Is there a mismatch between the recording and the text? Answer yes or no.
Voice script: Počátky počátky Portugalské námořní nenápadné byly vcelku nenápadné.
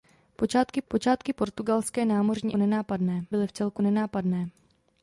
no